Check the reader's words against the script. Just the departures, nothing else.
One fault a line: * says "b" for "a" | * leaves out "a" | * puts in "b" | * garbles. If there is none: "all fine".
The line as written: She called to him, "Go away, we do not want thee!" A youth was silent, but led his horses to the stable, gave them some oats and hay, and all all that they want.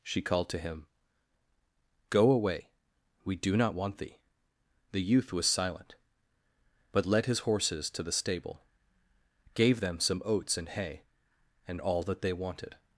* says "The" for "A"
* leaves out "all"
* says "wanted" for "want"